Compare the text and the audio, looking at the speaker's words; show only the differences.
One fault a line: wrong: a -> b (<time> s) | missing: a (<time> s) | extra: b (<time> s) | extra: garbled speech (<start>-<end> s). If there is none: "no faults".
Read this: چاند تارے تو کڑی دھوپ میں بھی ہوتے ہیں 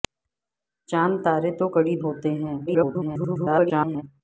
missing: دھوپ میں بھی (1.9 s)
extra: garbled speech (2.7-4.0 s)